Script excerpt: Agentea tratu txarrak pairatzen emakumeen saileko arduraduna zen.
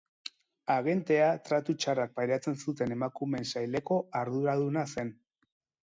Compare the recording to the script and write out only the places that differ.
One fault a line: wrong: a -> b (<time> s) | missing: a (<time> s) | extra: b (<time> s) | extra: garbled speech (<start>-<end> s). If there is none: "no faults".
extra: zuten (2.6 s)